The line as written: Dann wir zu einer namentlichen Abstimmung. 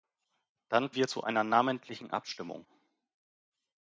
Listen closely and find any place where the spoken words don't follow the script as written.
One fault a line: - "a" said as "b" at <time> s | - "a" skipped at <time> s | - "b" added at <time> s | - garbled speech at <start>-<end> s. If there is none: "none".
none